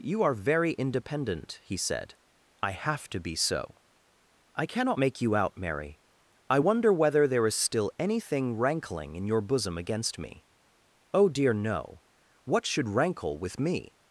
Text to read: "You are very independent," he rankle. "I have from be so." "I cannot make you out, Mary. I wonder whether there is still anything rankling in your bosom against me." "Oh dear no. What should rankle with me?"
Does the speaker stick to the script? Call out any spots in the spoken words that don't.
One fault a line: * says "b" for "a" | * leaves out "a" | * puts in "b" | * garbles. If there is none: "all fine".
* says "said" for "rankle"
* says "to" for "from"